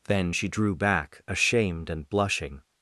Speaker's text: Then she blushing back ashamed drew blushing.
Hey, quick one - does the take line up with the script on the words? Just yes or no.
no